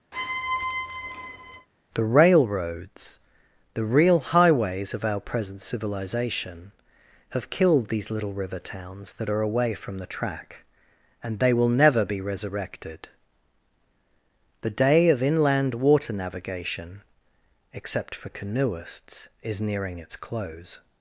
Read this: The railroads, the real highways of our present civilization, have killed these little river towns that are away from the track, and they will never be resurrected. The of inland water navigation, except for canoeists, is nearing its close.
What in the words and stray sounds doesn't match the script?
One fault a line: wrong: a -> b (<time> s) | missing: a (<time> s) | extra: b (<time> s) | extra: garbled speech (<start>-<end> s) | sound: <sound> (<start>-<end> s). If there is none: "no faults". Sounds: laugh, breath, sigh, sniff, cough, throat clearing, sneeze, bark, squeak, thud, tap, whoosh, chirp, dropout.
sound: squeak (0.1-1.7 s)
extra: day (14.7 s)